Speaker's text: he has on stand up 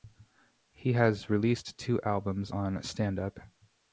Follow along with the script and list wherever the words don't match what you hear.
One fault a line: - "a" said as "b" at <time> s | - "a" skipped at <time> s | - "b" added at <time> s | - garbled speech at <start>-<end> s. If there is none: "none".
- "released two albums" added at 1.3 s